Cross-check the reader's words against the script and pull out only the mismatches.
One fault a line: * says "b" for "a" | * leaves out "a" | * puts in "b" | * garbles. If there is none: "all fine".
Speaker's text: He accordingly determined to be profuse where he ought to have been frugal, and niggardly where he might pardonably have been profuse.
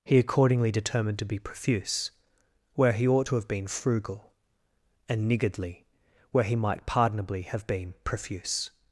all fine